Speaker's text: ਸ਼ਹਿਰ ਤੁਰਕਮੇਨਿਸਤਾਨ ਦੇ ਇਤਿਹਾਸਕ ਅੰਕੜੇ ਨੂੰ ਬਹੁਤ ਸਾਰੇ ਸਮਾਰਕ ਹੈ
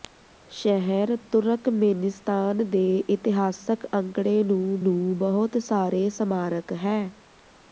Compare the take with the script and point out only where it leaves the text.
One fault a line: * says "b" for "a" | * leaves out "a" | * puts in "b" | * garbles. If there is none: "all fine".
* puts in "ਨੂੰ"